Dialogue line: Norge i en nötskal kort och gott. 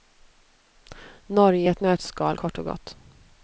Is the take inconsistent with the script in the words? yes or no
yes